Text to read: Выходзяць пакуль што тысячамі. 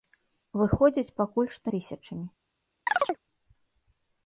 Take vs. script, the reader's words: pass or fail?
pass